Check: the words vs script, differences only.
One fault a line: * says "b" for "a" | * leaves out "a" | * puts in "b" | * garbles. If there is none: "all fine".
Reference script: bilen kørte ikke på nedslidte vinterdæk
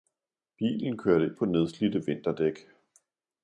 * leaves out "ikke"